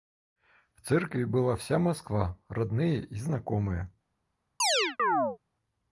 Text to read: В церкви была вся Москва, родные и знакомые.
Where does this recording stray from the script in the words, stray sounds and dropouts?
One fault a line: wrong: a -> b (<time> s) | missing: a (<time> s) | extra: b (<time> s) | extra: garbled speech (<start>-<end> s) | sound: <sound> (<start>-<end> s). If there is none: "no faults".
sound: chirp (4.6-5.4 s)